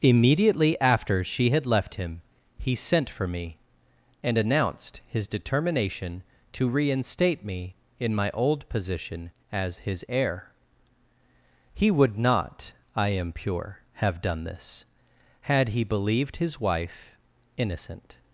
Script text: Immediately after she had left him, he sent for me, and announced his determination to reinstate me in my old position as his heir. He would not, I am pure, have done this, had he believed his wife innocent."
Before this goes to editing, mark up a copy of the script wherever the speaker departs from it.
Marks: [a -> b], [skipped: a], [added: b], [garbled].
Immediately after she had left him, he sent for me, and announced his determination to reinstate me in my old position as his heir. He would not, I am pure, have done this, had he believed his wife innocent."